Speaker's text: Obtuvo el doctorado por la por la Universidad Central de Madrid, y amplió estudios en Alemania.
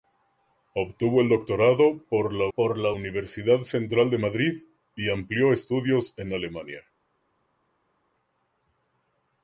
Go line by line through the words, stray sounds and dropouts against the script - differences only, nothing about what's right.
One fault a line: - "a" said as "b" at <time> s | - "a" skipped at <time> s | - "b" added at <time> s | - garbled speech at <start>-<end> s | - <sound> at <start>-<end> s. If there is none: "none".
none